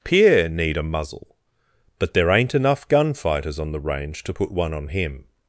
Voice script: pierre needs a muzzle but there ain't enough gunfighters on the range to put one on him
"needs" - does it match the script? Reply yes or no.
no